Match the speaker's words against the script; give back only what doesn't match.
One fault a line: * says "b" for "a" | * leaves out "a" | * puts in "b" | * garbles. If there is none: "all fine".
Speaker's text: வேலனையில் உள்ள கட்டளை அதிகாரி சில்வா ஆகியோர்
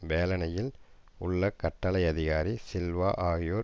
all fine